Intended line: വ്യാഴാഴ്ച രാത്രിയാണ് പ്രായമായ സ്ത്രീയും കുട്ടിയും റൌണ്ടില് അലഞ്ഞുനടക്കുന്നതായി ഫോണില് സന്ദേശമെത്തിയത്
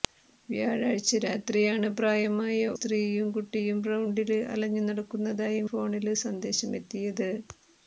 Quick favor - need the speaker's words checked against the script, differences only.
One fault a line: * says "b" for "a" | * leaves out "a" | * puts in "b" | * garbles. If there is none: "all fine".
all fine